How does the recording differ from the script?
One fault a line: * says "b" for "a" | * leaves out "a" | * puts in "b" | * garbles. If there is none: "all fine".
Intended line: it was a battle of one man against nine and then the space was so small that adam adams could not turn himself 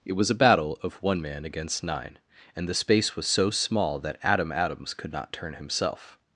* leaves out "then"